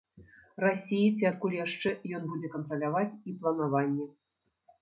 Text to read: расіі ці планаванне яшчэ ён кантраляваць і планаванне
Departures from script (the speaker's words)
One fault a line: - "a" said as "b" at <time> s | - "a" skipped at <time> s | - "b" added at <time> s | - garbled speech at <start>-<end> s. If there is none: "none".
- "планаванне" said as "адкуль" at 1.3 s
- "будзе" added at 2.3 s